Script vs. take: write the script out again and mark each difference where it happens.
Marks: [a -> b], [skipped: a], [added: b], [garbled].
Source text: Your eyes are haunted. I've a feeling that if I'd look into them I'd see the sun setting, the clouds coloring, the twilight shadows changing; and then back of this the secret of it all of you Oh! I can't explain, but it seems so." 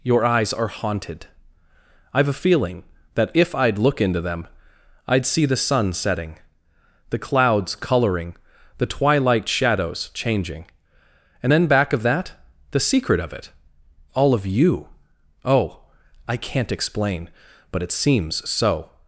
Your eyes are haunted. I've a feeling that if I'd look into them I'd see the sun setting, the clouds coloring, the twilight shadows changing; and then back of [this -> that] the secret of it all of you Oh! I can't explain, but it seems so."